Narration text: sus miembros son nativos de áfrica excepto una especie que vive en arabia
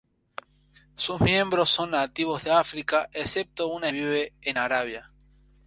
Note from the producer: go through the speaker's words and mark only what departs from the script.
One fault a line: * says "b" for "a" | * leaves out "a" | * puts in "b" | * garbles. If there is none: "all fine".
* leaves out "especie que"